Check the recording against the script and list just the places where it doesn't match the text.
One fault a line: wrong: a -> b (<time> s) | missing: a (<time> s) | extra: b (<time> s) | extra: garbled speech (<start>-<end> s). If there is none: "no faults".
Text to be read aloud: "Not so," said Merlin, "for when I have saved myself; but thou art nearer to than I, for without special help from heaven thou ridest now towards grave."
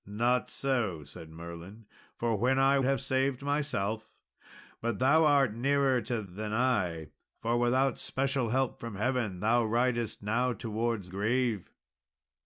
no faults